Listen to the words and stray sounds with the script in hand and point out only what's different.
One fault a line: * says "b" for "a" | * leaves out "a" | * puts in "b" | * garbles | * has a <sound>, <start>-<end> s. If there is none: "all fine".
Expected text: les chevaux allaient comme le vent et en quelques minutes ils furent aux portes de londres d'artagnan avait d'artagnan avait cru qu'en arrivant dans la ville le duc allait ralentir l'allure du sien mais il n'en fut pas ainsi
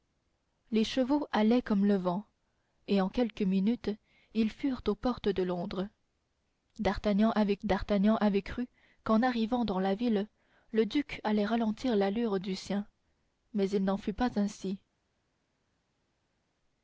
all fine